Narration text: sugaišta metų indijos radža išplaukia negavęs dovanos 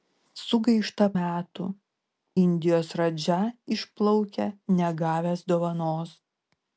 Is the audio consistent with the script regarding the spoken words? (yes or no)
yes